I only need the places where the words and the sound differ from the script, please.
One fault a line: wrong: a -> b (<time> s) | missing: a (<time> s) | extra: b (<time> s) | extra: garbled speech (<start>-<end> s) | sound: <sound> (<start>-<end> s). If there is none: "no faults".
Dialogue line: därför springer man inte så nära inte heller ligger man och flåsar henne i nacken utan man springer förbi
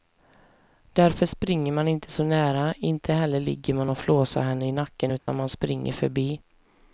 sound: dropout (5.2-5.3 s)